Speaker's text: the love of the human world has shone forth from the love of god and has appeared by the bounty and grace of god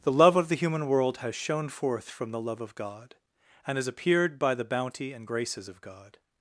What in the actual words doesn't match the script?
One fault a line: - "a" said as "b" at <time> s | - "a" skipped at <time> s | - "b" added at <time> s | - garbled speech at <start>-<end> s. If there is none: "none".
- "grace" said as "graces" at 5.2 s